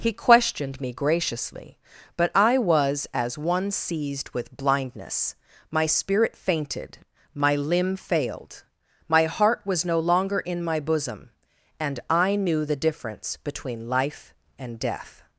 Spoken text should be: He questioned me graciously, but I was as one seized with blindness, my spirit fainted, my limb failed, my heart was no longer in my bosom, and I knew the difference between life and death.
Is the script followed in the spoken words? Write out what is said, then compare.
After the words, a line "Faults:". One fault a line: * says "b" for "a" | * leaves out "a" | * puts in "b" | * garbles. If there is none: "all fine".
He questioned me graciously, but I was as one seized with blindness, my spirit fainted, my limb failed, my heart was no longer in my bosom, and I knew the difference between life and death.
Faults:
all fine